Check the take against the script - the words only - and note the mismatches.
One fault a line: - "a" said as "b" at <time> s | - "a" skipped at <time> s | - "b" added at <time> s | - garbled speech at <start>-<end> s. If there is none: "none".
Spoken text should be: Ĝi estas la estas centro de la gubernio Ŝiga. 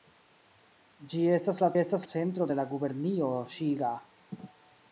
none